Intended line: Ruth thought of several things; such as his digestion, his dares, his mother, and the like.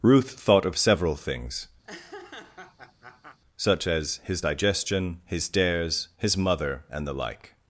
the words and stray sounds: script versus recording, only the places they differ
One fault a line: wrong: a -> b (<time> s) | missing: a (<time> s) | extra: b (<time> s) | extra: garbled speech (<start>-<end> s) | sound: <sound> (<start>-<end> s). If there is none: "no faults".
sound: laugh (1.8-3.4 s)